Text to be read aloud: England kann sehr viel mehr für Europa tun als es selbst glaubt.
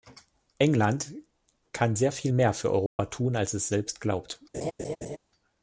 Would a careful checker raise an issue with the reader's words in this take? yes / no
no